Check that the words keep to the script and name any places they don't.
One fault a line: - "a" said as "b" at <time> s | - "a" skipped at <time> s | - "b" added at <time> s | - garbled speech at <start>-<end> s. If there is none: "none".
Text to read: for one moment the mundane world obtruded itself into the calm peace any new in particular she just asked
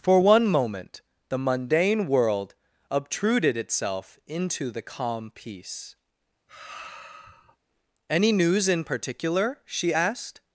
- "new" said as "news" at 8.3 s
- "just" skipped at 9.9 s